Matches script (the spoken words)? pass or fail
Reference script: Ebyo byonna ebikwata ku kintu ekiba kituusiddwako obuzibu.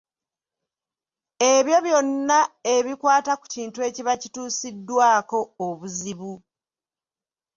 pass